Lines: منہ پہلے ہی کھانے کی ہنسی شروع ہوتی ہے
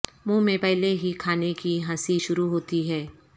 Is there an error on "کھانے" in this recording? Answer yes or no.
no